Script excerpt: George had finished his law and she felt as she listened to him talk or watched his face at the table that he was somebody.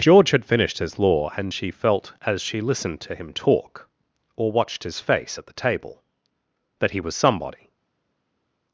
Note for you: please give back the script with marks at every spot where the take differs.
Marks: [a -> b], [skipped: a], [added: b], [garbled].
George had finished his law and she felt as she listened to him talk or watched his face at the table that he was somebody.